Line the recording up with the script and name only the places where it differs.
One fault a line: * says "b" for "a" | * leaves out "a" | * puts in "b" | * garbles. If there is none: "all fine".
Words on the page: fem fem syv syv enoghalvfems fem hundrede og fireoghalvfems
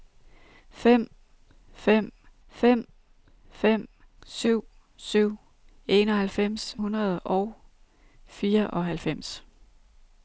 * puts in "fem fem"
* leaves out "fem"